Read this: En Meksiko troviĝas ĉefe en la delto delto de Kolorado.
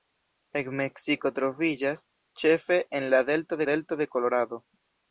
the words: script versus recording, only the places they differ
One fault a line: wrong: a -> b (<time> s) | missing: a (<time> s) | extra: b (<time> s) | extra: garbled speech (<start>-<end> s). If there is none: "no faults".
no faults